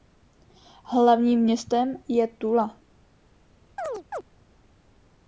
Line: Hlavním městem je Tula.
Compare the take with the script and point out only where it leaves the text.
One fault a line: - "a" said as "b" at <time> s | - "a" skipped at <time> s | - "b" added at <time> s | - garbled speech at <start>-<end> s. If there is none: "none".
none